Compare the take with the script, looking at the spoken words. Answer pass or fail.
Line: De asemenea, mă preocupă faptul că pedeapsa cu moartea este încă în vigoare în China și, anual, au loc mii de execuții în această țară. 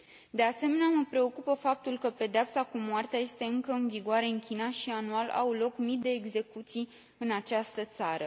pass